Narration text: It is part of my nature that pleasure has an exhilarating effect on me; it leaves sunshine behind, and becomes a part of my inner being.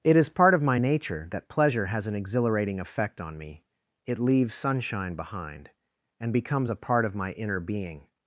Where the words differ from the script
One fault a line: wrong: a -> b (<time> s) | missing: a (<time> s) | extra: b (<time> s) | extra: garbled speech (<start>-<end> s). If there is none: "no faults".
no faults